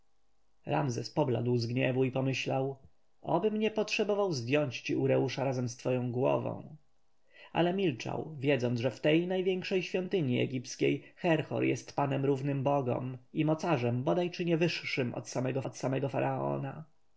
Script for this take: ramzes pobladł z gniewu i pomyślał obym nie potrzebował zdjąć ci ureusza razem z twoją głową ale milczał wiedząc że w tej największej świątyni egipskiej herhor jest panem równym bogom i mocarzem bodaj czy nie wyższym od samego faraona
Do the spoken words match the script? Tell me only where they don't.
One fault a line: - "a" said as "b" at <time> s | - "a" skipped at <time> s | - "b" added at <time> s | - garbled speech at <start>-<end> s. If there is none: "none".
- "od samego" added at 15.6 s